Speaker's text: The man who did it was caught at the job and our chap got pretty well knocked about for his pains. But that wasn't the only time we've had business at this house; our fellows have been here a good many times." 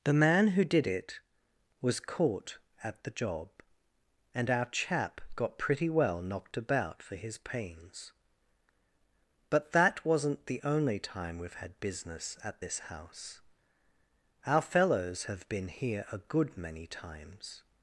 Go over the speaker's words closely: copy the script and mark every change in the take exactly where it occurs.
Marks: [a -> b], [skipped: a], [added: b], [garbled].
The man who did it was caught at the job and our chap got pretty well knocked about for his pains. But that wasn't the only time we've had business at this house; our fellows have been here a good many times."